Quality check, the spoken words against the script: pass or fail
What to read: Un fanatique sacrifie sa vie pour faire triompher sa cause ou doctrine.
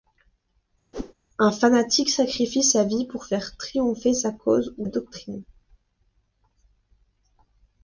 pass